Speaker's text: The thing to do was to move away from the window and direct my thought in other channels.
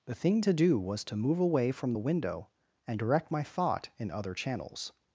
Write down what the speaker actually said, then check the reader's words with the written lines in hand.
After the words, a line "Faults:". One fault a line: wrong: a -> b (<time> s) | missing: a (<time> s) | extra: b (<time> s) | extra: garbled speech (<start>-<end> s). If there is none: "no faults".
The thing to do was to move away from the window and direct my thought in other channels.
Faults:
no faults